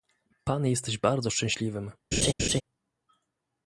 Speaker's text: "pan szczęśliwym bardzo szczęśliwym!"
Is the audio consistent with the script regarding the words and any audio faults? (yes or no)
no